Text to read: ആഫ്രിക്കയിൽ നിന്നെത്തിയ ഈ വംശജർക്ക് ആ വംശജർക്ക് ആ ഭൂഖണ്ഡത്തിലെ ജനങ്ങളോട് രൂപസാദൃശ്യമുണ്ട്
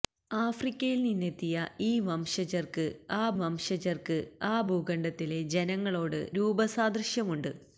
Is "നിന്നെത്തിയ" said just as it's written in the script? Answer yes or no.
yes